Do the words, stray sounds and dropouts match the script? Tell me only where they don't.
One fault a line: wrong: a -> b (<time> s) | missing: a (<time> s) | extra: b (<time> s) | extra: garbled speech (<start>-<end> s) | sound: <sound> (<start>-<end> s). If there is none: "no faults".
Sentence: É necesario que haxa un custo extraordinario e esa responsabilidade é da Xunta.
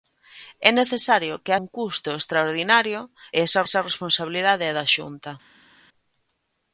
missing: haxa (1.5 s)
extra: esa (3.7 s)